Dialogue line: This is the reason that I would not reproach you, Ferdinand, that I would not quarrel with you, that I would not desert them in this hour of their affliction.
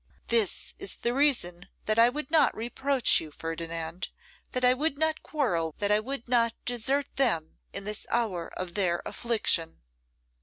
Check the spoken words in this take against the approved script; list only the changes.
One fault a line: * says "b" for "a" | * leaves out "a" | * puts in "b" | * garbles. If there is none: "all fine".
* leaves out "with you"